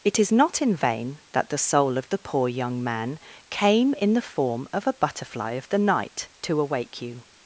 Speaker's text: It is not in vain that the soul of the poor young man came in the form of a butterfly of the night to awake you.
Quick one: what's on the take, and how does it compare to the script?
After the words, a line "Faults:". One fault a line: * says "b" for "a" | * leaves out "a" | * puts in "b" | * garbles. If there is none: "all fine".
It is not in vain that the soul of the poor young man came in the form of a butterfly of the night to awake you.
Faults:
all fine